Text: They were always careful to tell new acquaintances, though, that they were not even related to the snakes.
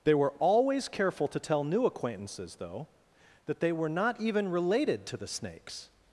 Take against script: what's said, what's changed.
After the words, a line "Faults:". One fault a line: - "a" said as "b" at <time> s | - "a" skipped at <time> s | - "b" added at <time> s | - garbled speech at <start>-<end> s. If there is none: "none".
They were always careful to tell new acquaintances, though, that they were not even related to the snakes.
Faults:
none